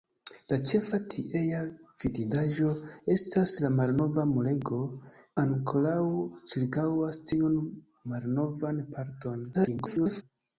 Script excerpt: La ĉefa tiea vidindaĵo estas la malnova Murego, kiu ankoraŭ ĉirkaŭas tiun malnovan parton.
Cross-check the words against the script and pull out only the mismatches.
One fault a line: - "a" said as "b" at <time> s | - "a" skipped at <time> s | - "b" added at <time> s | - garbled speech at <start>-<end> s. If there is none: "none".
- "kiu" skipped at 4.8 s
- garbled speech at 9.5-10.2 s